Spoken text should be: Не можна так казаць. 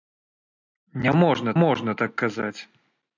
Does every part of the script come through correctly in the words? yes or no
no